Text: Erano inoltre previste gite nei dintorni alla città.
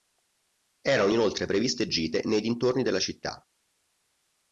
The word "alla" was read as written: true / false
false